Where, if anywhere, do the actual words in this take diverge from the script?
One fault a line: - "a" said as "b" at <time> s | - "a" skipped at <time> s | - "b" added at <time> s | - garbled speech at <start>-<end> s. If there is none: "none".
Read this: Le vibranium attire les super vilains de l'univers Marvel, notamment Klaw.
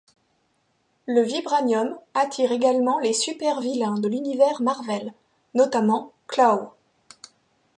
- "également" added at 2.5 s